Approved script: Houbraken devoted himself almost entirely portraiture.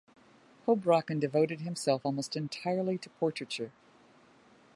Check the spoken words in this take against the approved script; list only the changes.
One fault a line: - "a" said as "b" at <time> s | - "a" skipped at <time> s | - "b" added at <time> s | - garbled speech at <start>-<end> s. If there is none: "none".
- "to" added at 3.0 s